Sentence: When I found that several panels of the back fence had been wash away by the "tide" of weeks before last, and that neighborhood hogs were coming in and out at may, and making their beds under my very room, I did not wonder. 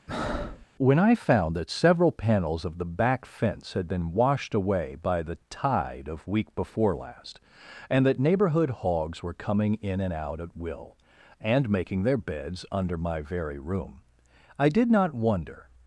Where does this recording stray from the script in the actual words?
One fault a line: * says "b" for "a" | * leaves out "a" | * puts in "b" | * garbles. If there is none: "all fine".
* says "washed" for "wash"
* says "week" for "weeks"
* says "will" for "may"